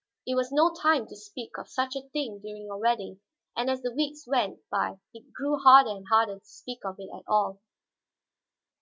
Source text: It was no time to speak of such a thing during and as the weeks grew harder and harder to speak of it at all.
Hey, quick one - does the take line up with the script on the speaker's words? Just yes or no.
no